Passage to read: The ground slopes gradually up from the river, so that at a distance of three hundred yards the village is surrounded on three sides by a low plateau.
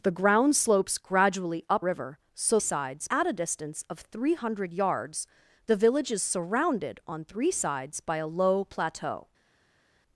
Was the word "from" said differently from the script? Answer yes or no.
yes